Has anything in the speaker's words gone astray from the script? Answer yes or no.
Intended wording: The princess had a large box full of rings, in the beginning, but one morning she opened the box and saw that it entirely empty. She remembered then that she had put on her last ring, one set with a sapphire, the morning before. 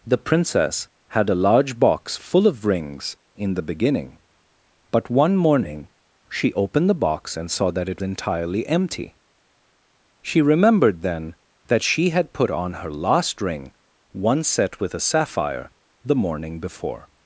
no